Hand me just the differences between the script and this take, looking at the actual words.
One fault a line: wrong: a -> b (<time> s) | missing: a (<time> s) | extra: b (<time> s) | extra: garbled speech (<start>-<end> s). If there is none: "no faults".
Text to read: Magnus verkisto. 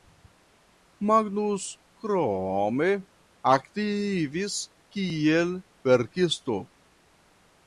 extra: krome aktivis kiel (2.0 s)